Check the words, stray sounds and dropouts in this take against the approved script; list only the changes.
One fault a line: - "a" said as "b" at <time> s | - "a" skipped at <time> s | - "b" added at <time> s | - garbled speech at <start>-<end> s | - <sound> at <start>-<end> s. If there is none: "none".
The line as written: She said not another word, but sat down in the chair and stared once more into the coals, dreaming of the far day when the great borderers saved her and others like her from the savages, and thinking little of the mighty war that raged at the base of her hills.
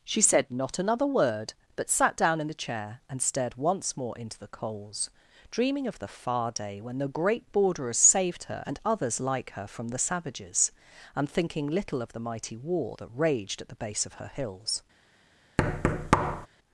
- thud at 15.6-16.5 s